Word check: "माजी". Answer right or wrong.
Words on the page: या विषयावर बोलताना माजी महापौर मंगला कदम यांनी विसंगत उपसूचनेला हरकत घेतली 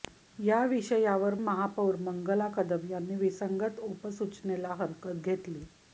wrong